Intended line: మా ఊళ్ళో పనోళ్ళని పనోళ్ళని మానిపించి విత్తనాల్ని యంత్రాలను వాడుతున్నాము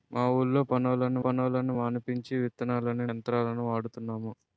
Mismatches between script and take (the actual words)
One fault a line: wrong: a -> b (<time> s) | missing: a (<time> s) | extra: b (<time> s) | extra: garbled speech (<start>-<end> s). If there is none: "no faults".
no faults